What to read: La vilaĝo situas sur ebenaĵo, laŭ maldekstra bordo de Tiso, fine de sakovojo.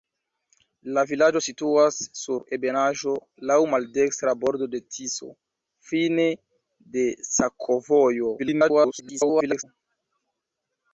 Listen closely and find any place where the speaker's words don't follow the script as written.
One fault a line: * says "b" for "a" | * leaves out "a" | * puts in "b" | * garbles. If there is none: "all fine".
* garbles